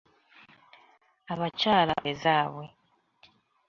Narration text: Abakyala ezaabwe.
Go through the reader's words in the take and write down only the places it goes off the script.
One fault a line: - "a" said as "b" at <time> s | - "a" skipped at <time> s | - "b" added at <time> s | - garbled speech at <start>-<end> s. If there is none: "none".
none